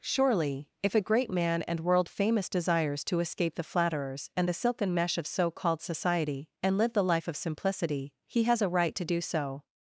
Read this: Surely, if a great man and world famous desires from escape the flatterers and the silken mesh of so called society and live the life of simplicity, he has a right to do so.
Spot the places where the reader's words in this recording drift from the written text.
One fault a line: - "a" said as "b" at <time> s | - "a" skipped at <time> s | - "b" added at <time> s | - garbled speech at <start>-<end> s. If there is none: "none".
- "from" said as "to" at 3.0 s